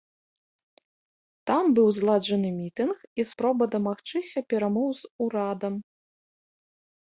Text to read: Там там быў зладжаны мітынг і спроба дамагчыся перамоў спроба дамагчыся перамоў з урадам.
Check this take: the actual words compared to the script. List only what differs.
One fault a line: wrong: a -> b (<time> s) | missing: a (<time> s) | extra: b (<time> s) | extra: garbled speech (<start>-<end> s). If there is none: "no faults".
missing: там (1.6 s)
missing: спроба дамагчыся перамоў (4.9 s)